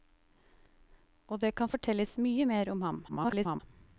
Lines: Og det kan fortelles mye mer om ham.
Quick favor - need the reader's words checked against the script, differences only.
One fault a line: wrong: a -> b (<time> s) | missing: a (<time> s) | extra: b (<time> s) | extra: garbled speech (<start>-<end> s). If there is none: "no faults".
extra: garbled speech (3.1-3.6 s)